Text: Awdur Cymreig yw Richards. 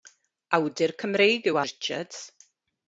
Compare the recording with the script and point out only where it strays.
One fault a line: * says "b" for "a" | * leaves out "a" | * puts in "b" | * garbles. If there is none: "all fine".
all fine